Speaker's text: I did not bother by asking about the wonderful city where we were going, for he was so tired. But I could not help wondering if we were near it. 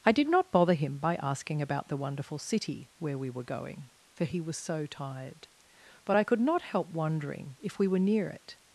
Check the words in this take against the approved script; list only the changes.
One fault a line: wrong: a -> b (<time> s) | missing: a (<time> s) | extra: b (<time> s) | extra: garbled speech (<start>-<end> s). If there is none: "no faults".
extra: him (0.7 s)